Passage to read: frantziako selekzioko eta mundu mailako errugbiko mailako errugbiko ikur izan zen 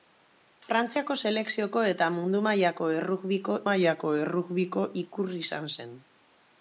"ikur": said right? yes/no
yes